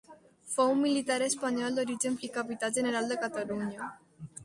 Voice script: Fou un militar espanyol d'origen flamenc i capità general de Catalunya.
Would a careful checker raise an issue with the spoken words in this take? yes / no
yes